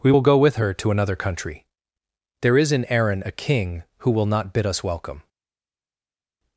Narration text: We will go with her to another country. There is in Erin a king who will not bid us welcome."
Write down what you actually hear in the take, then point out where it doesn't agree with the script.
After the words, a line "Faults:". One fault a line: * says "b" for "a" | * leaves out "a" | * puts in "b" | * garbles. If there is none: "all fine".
We will go with her to another country. There is in Erin a king who will not bid us welcome."
Faults:
all fine